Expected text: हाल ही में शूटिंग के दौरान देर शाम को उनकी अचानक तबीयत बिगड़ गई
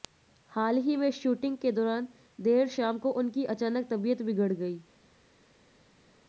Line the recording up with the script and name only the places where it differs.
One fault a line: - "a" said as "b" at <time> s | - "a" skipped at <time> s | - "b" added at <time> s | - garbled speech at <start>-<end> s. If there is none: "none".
none